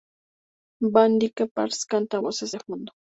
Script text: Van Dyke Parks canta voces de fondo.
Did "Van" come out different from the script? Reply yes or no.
no